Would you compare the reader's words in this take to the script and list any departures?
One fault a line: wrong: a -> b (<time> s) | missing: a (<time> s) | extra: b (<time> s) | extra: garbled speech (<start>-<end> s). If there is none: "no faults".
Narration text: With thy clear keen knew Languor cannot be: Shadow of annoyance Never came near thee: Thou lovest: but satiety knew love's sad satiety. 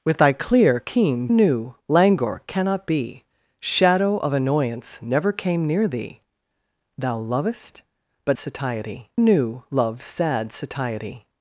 no faults